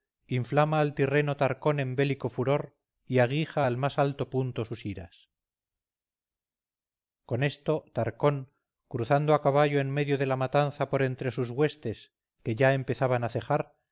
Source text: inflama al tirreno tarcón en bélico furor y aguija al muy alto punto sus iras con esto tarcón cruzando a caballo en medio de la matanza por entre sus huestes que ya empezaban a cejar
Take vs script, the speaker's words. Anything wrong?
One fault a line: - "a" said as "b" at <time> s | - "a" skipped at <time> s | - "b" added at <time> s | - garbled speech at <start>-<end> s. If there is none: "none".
- "muy" said as "más" at 3.8 s